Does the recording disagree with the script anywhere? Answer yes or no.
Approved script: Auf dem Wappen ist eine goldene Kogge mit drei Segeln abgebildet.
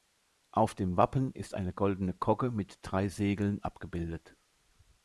no